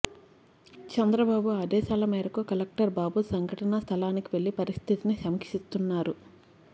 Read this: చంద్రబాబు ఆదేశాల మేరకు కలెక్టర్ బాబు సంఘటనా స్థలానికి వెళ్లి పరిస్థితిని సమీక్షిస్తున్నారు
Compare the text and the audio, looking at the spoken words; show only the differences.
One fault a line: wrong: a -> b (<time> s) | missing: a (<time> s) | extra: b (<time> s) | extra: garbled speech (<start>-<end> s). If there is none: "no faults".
no faults